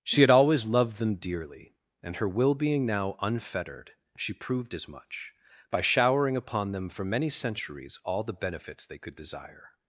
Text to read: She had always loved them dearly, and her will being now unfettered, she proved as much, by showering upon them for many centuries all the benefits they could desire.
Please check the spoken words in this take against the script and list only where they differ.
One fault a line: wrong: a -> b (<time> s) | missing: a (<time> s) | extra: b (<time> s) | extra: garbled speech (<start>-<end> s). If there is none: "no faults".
no faults